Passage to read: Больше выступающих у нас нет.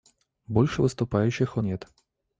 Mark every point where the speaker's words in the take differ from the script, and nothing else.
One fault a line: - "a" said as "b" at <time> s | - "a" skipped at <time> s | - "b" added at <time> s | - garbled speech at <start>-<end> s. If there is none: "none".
- "нас" skipped at 1.6 s